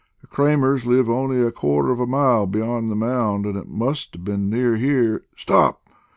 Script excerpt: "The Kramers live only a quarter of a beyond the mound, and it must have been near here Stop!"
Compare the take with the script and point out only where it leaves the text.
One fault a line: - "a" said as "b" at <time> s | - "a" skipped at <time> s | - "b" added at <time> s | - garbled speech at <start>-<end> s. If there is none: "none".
- "mile" added at 2.1 s